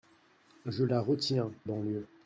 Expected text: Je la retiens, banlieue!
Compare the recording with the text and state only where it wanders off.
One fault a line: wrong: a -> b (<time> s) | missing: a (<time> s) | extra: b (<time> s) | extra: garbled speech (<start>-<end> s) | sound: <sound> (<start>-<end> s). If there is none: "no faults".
no faults